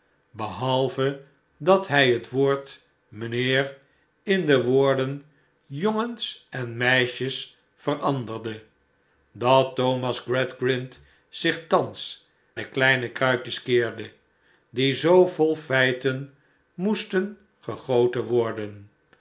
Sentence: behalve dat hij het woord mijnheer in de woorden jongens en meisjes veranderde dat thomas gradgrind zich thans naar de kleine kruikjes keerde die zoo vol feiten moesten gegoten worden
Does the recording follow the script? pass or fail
fail